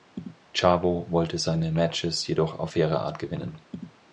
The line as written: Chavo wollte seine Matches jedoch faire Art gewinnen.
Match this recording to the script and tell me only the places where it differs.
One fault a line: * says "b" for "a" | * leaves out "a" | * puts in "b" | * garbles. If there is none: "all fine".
* puts in "auf"